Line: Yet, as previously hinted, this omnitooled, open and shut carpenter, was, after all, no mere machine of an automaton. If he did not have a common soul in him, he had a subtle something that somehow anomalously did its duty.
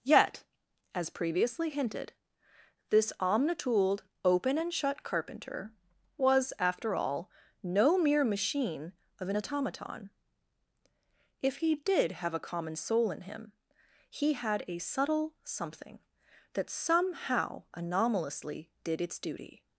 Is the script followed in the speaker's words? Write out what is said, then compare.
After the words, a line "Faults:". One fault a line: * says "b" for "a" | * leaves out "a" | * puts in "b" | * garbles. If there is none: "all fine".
Yet, as previously hinted, this omnitooled, open and shut carpenter, was, after all, no mere machine of an automaton. If he did have a common soul in him, he had a subtle something that somehow anomalously did its duty.
Faults:
* leaves out "not"